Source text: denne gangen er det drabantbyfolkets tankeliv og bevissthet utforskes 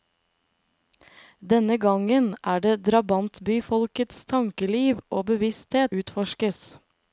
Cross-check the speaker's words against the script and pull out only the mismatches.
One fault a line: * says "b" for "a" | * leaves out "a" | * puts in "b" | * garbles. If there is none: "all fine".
all fine